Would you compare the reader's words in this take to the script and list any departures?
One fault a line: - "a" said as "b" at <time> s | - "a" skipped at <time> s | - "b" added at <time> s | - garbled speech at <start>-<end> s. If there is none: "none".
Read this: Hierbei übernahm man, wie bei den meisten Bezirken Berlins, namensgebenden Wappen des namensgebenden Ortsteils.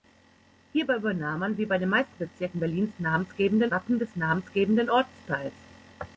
none